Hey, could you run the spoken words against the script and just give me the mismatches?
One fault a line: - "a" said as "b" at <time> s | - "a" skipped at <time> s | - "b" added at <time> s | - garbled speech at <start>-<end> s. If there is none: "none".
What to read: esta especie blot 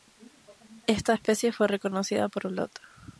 - "fue reconocida por" added at 1.5 s